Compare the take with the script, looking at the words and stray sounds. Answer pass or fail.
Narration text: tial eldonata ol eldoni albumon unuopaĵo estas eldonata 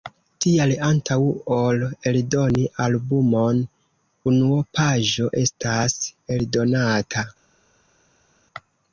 fail